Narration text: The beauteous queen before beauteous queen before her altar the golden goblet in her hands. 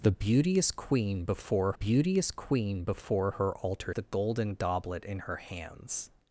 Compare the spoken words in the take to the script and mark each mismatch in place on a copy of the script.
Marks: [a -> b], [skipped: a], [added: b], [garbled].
The beauteous queen before beauteous queen before her altar the golden goblet in her hands.